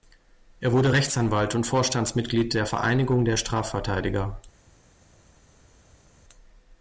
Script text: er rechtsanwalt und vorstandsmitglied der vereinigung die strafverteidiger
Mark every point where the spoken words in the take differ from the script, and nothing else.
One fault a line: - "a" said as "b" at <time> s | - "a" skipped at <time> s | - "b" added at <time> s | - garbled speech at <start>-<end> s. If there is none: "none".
- "wurde" added at 0.7 s
- "die" said as "der" at 3.2 s